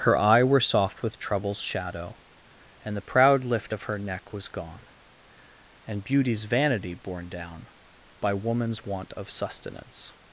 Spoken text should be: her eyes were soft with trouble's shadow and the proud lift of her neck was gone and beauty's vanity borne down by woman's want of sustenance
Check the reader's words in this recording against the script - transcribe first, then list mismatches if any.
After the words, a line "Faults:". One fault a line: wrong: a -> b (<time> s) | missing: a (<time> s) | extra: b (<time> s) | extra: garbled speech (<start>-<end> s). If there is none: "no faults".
her eye were soft with trouble's shadow and the proud lift of her neck was gone and beauty's vanity borne down by woman's want of sustenance
Faults:
wrong: eyes -> eye (0.2 s)